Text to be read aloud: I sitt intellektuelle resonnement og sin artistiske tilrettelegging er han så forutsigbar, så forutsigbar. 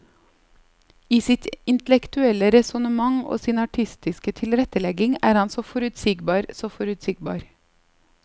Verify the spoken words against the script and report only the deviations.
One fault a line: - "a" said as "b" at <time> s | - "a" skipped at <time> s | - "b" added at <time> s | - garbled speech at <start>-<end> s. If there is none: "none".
none